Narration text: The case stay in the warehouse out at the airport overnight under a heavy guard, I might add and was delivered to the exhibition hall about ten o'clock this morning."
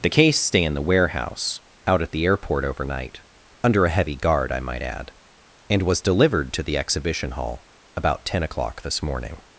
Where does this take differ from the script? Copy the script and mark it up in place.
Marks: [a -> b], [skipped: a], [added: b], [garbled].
The case stay in the warehouse out at the airport overnight under a heavy guard, I might add and was delivered to the exhibition hall about ten o'clock this morning."